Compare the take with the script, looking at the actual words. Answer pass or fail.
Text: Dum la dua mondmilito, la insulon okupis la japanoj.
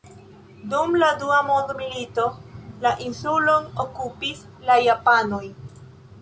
pass